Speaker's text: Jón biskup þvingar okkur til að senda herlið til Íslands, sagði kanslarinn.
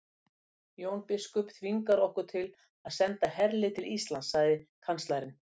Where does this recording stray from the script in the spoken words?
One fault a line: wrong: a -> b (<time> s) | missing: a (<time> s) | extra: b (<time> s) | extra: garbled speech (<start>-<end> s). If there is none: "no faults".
no faults